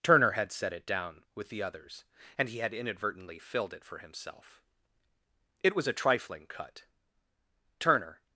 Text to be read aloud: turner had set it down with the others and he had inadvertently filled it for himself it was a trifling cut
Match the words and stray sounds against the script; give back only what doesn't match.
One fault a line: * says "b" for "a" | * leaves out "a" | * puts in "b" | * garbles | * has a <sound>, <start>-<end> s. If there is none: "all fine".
* puts in "turner"